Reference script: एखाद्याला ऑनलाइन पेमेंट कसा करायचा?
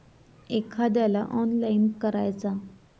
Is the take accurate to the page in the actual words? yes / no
no